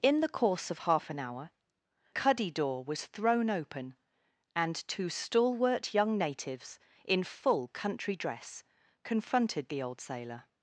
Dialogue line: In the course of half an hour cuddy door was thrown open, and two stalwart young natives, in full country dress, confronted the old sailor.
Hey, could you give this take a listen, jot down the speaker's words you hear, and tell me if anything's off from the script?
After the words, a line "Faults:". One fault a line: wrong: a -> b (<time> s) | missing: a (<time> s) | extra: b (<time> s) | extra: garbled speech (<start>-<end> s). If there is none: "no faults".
In the course of half an hour cuddy door was thrown open, and two stalwart young natives, in full country dress, confronted the old sailor.
Faults:
no faults